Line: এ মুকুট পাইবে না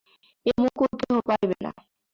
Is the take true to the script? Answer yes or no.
no